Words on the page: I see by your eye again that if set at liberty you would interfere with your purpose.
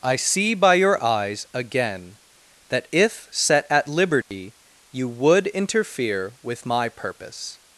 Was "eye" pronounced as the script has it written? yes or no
no